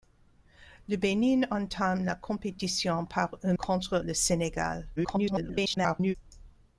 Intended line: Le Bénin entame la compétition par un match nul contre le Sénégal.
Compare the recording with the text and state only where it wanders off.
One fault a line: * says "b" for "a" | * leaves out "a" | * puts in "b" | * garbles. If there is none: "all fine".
* leaves out "match nul"
* garbles